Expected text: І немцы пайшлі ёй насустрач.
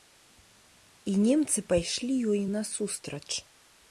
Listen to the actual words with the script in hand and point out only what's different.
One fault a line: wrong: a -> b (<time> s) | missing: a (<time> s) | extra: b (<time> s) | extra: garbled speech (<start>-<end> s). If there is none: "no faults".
no faults